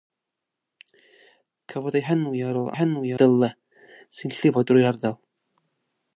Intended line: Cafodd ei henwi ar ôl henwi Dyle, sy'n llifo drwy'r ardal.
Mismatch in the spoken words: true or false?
false